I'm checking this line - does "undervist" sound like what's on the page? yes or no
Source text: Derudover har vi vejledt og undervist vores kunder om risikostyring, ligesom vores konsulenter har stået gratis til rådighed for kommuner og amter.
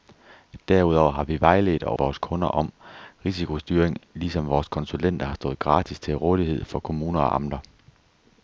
no